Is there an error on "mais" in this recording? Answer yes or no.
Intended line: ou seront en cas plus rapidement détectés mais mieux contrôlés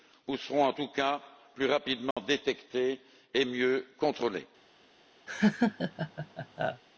yes